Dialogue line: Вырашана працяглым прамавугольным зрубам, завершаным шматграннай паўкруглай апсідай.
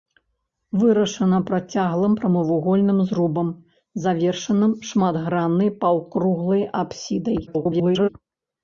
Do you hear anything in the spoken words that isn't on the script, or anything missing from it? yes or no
yes